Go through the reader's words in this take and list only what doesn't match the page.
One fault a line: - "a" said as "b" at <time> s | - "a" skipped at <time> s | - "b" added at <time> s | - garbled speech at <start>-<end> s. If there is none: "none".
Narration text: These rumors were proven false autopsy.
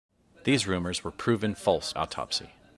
none